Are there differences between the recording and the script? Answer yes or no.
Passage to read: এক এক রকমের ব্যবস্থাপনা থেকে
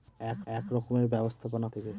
no